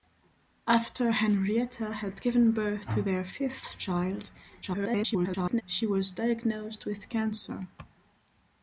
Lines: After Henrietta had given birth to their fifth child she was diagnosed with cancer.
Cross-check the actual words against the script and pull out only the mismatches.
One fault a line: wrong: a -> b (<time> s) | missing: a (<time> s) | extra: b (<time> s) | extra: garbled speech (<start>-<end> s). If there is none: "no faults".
extra: garbled speech (4.6-5.6 s)